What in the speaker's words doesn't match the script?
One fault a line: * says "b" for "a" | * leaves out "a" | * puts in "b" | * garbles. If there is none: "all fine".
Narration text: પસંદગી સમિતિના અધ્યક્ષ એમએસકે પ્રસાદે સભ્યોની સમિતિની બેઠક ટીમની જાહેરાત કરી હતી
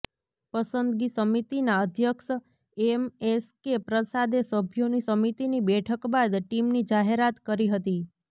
* puts in "બાદ"